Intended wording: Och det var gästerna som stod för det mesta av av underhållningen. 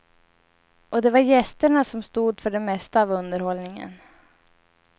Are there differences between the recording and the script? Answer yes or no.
yes